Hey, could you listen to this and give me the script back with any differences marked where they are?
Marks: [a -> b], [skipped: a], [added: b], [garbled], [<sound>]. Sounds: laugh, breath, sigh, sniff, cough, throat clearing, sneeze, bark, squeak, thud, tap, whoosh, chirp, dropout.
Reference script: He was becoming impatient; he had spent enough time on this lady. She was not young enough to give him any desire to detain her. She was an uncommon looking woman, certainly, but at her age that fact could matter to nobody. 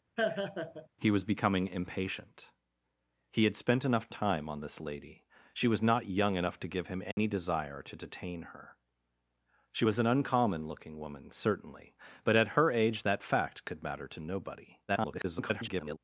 [laugh] He was becoming impatient; he had spent enough time on this lady. She was not young enough to give him any [dropout] desire to detain her. She was an uncommon looking woman, certainly, but at her age that fact could matter to nobody. [garbled]